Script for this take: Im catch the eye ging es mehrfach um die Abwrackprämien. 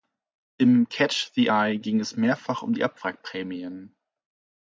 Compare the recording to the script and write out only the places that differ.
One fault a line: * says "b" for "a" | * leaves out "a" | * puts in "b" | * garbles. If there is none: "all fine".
all fine